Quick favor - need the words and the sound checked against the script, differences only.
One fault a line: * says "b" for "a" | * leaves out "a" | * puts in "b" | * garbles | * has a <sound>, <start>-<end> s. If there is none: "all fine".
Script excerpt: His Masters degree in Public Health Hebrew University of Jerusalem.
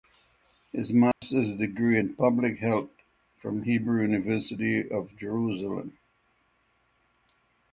* has a dropout, 1.1-1.2 s
* puts in "from"